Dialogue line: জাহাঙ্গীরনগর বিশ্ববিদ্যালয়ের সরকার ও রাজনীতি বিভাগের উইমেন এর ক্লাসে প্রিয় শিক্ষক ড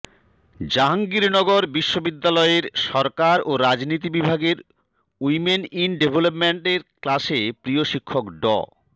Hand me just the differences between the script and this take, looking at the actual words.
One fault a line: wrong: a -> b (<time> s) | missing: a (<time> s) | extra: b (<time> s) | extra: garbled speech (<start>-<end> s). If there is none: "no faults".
extra: ইন ডেভেলপমেন্ট (5.7 s)